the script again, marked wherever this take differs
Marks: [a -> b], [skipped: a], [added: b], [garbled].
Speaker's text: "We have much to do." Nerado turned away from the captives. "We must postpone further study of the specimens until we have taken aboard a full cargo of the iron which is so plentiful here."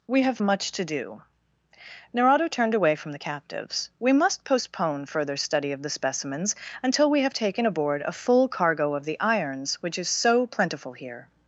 "We have much to do." Nerado turned away from the captives. "We must postpone further study of the specimens until we have taken aboard a full cargo of the [iron -> irons] which is so plentiful here."